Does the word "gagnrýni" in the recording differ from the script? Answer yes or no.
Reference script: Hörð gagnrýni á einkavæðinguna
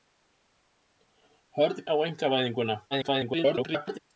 yes